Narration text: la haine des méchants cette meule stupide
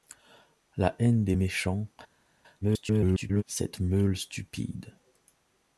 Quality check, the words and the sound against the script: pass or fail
fail